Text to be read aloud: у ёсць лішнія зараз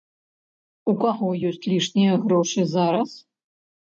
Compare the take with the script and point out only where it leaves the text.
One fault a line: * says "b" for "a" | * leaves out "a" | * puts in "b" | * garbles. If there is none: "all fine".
* puts in "каго"
* puts in "грошы"